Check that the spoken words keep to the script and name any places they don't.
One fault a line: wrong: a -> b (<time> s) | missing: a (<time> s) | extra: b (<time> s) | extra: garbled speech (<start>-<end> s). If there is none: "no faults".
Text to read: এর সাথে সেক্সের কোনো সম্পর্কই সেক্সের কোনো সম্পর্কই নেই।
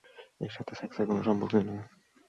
missing: সেক্সের কোনো সম্পর্কই (1.6 s)